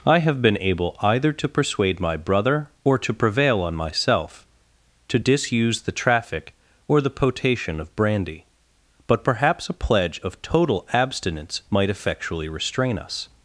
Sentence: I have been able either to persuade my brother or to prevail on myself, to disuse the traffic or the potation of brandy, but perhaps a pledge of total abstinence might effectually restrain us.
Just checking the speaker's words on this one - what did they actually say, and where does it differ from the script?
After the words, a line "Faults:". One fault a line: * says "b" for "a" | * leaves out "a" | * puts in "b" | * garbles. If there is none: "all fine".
I have been able either to persuade my brother or to prevail on myself, to disuse the traffic or the potation of brandy, but perhaps a pledge of total abstinence might effectually restrain us.
Faults:
all fine